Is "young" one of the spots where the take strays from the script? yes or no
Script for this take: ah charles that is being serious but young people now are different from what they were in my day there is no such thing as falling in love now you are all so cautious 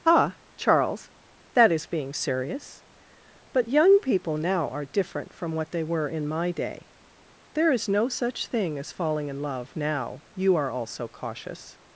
no